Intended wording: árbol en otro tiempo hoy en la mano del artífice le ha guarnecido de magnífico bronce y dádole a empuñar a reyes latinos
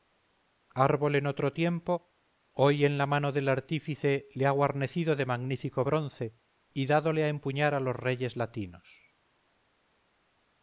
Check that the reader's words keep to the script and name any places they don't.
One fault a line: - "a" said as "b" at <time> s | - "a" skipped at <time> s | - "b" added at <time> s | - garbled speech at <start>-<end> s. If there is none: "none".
- "los" added at 7.8 s